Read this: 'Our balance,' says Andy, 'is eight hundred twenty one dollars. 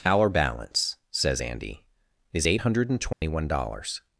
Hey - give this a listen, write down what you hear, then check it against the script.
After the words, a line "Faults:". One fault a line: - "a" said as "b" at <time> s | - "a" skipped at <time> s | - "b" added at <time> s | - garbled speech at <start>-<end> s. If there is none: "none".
'Our balance,' says Andy, 'is eight hundred twenty one dollars.
Faults:
none